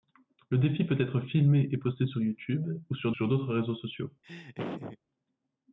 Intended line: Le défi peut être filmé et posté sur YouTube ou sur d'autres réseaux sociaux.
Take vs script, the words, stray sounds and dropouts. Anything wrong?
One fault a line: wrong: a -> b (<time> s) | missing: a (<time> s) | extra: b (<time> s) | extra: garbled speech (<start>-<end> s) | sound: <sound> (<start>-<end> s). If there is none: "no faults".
extra: sur (3.1 s)
sound: laugh (4.2-5.0 s)